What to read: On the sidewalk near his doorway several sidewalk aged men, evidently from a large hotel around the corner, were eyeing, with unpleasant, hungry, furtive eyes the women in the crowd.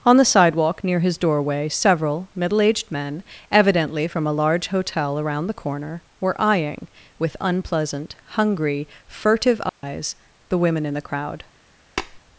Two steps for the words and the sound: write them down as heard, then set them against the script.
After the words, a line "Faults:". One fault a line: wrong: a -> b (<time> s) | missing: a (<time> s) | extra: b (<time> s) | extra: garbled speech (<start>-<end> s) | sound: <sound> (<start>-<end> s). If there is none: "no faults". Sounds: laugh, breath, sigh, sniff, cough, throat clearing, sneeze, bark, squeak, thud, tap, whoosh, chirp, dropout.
On the sidewalk near his doorway several middle aged men, evidently from a large hotel around the corner, were eyeing, with unpleasant, hungry, furtive eyes the women in the crowd.
Faults:
wrong: sidewalk -> middle (2.4 s)
sound: dropout (9.7-9.8 s)
sound: tap (12.0-12.2 s)